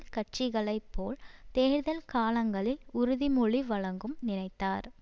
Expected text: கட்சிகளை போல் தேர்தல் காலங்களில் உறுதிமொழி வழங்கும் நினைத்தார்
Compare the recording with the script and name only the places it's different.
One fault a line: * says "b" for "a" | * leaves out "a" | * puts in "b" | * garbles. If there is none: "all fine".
all fine